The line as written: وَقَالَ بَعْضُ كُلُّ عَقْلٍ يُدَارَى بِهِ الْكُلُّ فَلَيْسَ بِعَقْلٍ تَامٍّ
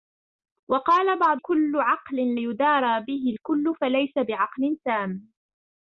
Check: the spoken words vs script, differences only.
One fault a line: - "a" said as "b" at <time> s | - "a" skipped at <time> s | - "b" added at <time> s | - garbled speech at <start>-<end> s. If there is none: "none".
none